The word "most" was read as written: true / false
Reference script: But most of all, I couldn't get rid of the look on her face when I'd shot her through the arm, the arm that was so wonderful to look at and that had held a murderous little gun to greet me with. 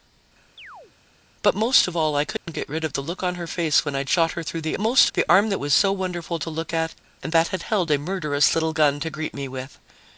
true